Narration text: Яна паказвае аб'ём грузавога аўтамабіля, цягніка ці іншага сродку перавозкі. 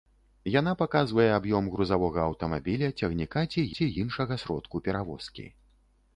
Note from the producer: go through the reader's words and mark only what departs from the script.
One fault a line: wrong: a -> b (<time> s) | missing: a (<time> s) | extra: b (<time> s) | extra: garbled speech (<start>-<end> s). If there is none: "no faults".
extra: ці (3.8 s)